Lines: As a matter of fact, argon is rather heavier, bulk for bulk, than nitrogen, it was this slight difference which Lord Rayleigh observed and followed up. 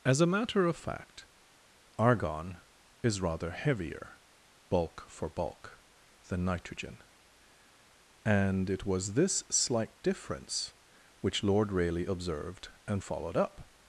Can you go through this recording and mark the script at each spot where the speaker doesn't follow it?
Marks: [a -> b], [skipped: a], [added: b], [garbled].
As a matter of fact, argon is rather heavier, bulk for bulk, than nitrogen, [added: and] it was this slight difference which Lord Rayleigh observed and followed up.